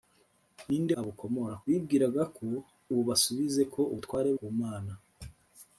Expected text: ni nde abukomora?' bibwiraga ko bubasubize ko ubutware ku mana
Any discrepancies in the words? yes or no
no